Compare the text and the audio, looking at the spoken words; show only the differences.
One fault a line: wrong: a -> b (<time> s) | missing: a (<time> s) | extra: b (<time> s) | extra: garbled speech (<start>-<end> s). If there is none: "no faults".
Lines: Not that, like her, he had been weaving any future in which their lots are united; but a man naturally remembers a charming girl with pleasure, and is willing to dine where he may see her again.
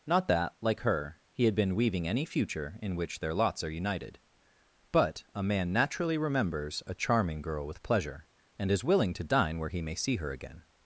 no faults